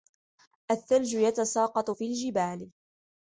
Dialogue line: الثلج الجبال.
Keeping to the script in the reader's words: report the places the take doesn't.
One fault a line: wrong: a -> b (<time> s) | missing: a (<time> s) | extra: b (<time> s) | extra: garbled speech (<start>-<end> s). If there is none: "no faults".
extra: يتساقط في (1.1 s)